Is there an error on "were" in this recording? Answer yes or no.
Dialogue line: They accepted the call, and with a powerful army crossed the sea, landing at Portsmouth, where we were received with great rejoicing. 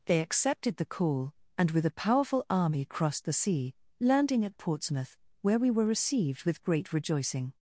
no